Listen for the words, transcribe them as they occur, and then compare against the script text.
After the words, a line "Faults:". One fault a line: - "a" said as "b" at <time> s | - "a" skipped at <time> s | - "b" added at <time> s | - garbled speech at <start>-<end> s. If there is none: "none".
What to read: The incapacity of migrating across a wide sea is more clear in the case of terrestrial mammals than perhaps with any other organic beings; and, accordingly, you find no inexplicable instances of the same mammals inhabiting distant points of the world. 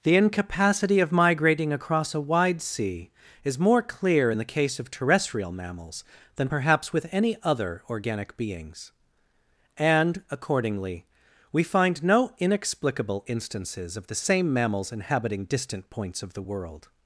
The incapacity of migrating across a wide sea is more clear in the case of terrestrial mammals than perhaps with any other organic beings; and, accordingly, we find no inexplicable instances of the same mammals inhabiting distant points of the world.
Faults:
- "you" said as "we" at 11.5 s